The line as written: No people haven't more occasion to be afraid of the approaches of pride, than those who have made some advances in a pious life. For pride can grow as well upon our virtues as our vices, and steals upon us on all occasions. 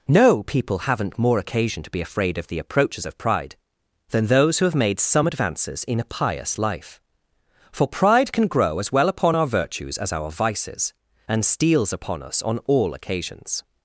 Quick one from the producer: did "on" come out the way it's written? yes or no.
yes